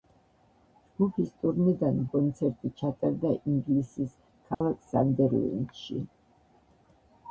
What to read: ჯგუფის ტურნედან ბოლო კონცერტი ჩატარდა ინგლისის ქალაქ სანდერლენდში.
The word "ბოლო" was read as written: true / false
false